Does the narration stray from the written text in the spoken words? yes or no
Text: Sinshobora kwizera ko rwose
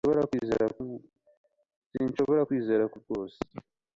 no